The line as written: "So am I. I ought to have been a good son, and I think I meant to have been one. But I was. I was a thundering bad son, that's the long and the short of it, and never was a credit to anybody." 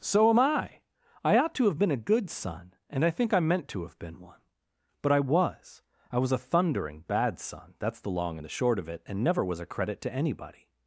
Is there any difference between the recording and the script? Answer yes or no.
no